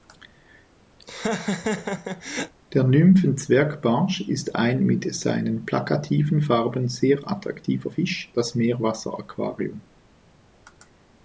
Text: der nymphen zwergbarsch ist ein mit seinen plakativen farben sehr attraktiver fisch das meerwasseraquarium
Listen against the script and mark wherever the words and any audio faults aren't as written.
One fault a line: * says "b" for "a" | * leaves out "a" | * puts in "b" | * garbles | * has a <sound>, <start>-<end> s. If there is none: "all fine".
* has a laugh, 1.0-2.5 s